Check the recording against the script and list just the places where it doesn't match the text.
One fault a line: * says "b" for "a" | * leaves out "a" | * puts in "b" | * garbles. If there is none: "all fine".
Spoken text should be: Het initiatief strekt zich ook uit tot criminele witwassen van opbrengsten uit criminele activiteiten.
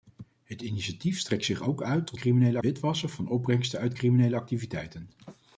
all fine